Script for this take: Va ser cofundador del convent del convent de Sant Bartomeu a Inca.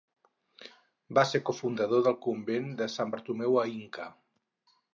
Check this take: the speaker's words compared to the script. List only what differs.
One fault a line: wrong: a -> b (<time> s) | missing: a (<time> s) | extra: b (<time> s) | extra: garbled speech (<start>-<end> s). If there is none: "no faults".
missing: del convent (2.7 s)